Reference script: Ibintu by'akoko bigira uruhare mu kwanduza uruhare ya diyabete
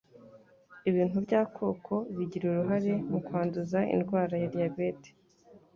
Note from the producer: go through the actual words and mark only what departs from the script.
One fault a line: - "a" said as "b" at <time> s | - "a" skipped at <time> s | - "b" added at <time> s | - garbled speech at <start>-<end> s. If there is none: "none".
- "uruhare" said as "indwara" at 3.9 s